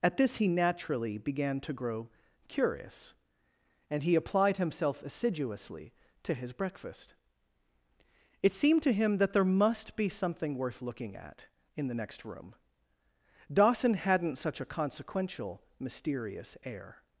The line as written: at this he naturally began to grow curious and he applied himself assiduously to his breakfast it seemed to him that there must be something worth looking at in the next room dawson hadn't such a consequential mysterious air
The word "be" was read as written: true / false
true